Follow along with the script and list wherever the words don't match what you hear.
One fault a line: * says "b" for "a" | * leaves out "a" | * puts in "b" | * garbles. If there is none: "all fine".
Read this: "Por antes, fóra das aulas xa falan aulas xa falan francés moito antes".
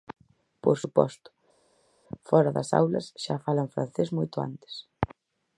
* says "suposto" for "antes"
* leaves out "aulas xa falan"